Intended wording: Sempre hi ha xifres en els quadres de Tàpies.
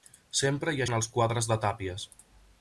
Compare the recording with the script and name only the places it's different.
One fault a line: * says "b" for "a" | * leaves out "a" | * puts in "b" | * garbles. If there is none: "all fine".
* leaves out "xifres"